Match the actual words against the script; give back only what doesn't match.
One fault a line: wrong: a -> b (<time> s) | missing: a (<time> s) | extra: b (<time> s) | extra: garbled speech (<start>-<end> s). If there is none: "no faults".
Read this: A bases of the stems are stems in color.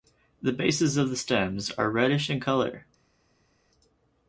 wrong: A -> The (0.4 s)
wrong: stems -> reddish (1.9 s)